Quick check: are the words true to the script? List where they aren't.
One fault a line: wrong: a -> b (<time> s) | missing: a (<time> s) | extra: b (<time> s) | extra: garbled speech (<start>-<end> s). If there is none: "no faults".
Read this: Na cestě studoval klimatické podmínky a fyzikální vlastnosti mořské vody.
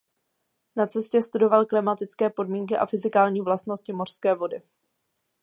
no faults